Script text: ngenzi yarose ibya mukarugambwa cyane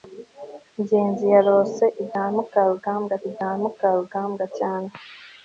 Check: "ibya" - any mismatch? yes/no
no